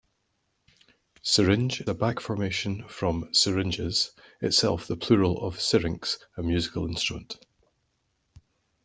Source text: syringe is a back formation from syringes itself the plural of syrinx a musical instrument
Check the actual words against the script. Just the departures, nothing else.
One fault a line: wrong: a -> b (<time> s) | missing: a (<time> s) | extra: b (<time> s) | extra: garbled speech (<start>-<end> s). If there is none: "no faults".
missing: is (1.8 s)